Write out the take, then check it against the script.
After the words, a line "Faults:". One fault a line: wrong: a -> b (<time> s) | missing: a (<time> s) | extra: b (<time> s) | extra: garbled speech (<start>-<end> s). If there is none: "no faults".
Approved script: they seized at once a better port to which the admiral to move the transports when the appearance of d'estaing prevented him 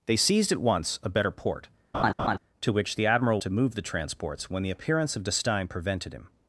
they seized at once a better port to which the admiral to move the transports when the appearance of d'estaing prevented him
Faults:
no faults